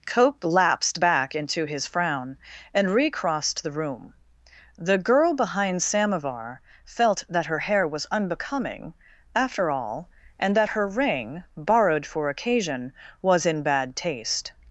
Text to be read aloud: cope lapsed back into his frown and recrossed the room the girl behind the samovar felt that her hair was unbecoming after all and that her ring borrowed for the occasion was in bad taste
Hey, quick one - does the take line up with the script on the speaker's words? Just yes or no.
no